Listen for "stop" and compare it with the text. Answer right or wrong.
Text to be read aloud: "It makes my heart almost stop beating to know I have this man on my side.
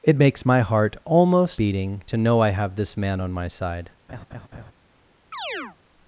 wrong